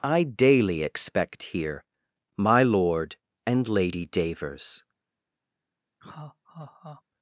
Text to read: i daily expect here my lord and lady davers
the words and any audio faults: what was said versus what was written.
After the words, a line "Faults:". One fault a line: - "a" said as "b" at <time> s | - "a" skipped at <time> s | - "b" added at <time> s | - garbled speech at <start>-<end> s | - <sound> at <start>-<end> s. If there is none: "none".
i daily expect here my lord and lady davers
Faults:
- laugh at 6.0-7.0 s